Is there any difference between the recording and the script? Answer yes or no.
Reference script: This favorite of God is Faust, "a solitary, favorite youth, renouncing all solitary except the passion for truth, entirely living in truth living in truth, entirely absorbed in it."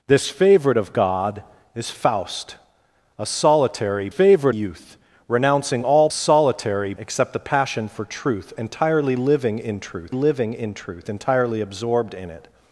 no